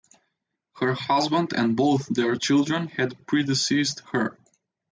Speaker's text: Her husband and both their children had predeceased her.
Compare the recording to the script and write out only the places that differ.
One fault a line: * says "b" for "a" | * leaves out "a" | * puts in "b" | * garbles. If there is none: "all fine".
all fine